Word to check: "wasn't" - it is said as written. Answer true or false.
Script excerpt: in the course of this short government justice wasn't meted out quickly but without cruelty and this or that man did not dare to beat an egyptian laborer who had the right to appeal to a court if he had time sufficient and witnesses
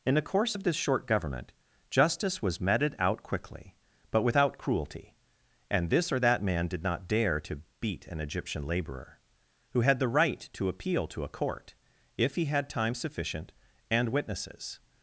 false